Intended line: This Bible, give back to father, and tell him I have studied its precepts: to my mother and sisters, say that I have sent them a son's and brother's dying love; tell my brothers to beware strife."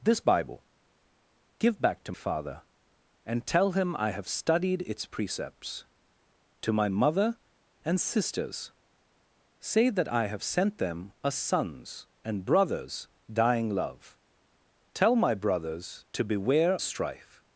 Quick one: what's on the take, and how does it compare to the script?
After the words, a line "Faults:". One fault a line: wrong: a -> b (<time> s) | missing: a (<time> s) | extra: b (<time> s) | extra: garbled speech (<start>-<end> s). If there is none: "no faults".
This Bible, give back to father, and tell him I have studied its precepts: to my mother and sisters, say that I have sent them a son's and brother's dying love; tell my brothers to beware strife."
Faults:
no faults